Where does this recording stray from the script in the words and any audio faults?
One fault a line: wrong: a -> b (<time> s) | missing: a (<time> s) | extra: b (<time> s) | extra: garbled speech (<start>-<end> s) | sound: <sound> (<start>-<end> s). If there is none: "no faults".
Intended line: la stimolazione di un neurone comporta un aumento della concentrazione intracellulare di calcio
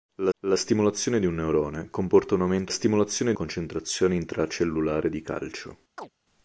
extra: la (0.4 s)
wrong: della -> stimolazione (2.7 s)
sound: chirp (6.0-6.1 s)